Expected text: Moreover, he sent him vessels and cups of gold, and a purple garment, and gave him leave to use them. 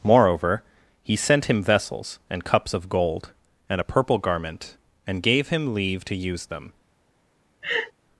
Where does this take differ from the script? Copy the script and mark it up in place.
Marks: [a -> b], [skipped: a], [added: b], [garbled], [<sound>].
Moreover, he sent him vessels and cups of gold, and a purple garment, and gave him leave to use them. [laugh]